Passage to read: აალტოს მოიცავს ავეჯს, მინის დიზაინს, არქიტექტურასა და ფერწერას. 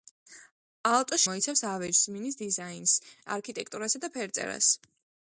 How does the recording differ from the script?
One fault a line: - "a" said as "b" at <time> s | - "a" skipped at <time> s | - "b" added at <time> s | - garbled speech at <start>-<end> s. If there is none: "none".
none